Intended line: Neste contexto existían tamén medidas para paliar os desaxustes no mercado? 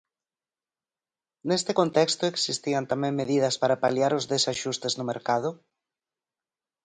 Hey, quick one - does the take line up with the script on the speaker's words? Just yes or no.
yes